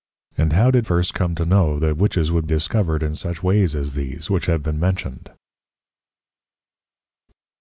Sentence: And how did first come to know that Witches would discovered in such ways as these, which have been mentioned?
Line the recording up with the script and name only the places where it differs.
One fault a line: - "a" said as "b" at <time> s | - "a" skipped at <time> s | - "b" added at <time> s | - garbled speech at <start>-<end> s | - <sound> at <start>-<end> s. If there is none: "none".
none